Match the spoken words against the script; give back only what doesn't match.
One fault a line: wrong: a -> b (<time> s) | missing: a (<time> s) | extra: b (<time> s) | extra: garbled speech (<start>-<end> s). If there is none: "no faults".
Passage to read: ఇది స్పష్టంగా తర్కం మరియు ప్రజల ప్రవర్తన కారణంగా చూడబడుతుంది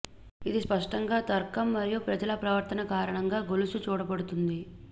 extra: గొలుసు (3.5 s)